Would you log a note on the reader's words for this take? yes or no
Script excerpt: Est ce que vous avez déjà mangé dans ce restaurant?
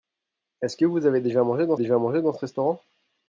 yes